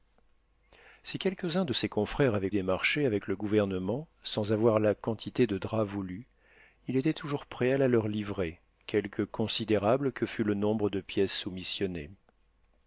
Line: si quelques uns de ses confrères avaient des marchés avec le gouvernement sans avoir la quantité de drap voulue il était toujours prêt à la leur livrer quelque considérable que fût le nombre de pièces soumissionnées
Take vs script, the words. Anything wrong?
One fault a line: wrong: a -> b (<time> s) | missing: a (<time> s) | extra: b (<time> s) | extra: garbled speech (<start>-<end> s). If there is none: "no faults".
no faults